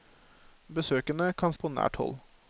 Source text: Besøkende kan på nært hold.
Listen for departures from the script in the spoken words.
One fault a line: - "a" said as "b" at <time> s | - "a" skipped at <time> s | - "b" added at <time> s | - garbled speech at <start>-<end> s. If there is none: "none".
none